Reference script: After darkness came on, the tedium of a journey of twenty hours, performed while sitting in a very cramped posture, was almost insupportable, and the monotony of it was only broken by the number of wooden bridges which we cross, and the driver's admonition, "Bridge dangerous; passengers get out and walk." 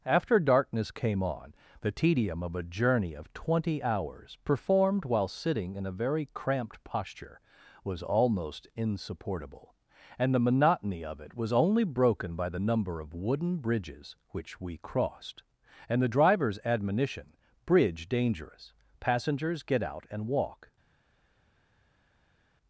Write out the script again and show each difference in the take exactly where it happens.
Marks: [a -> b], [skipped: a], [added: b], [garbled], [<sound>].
After darkness came on, the tedium of a journey of twenty hours, performed while sitting in a very cramped posture, was almost insupportable, and the monotony of it was only broken by the number of wooden bridges which we [cross, -> crossed] and the driver's admonition, "Bridge dangerous; passengers get out and walk."